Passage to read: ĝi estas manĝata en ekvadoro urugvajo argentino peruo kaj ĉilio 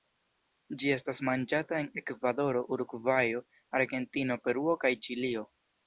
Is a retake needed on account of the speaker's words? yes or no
no